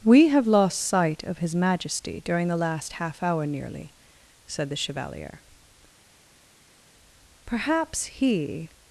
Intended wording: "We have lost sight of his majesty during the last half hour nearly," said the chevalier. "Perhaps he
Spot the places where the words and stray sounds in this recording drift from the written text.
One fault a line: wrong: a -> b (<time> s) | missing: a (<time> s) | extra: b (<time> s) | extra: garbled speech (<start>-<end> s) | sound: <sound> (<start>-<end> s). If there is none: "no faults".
no faults